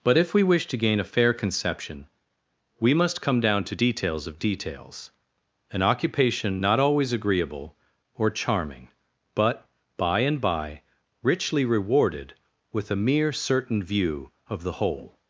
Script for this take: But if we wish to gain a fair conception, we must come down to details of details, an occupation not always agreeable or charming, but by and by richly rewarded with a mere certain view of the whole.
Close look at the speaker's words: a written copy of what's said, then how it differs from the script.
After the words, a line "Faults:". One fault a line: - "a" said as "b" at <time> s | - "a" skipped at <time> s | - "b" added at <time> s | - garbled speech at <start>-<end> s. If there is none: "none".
But if we wish to gain a fair conception, we must come down to details of details, an occupation not always agreeable or charming, but by and by richly rewarded with a mere certain view of the whole.
Faults:
none